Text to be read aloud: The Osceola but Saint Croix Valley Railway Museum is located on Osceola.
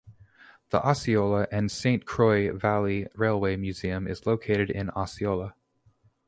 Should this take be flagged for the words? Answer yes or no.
yes